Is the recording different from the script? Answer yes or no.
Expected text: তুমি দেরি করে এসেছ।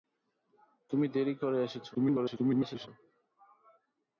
yes